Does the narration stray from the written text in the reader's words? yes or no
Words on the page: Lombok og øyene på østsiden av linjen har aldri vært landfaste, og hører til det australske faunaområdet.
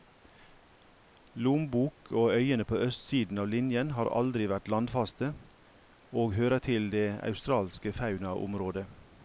no